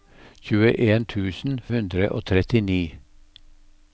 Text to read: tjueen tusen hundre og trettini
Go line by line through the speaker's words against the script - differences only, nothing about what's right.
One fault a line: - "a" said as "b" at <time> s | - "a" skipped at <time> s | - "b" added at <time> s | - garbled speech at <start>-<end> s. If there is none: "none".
none